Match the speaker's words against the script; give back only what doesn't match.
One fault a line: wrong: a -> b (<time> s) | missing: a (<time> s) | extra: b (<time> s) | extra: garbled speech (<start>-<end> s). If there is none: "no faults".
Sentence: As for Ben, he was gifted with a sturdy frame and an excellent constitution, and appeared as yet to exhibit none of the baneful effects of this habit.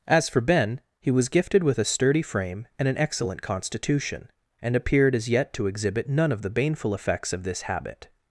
no faults